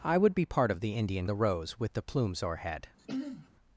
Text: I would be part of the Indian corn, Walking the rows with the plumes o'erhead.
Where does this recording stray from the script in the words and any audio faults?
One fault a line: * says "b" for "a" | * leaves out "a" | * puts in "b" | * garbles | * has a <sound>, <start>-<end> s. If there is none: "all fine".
* leaves out "corn Walking"
* has a throat clearing, 3.0-3.5 s